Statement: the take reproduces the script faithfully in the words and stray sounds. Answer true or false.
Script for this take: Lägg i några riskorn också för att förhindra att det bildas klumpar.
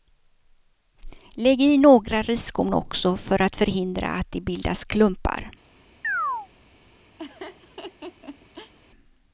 false